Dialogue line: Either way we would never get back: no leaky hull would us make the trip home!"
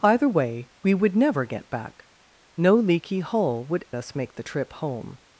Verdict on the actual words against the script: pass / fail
pass